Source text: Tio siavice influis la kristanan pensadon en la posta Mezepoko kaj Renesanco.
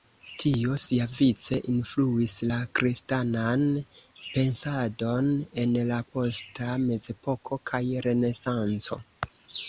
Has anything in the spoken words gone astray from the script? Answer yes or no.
no